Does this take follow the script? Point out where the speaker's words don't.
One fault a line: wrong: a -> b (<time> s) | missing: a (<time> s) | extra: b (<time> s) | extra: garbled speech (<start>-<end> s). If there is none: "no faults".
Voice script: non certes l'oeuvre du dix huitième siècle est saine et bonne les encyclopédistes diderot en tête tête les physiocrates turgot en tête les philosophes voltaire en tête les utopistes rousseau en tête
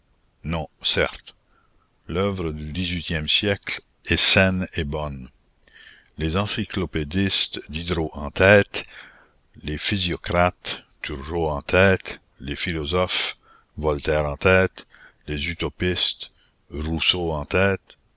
missing: tête (8.9 s)